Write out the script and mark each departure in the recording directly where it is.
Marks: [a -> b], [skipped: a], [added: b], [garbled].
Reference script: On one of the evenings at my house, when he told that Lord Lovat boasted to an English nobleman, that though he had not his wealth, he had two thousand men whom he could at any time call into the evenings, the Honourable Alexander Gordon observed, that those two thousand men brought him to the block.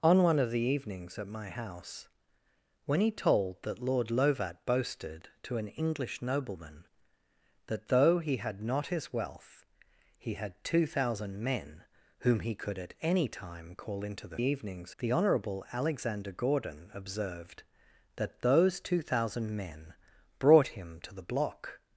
On one of the evenings at my house, when he told that Lord Lovat boasted to an English nobleman, that though he had not his wealth, he had two thousand men whom he could at any time call into the evenings, the Honourable Alexander Gordon observed, that those two thousand men brought him to the block.